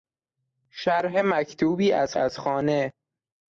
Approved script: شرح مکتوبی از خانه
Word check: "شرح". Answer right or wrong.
right